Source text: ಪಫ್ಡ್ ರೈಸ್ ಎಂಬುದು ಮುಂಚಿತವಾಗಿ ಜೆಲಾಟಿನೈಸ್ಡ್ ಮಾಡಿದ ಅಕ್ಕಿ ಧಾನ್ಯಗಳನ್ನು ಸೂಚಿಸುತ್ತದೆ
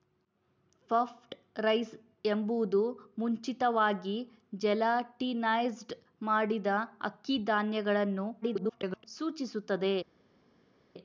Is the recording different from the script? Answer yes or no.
yes